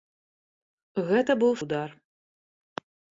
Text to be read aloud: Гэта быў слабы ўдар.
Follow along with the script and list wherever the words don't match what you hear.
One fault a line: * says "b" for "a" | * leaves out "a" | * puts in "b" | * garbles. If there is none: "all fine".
* leaves out "слабы"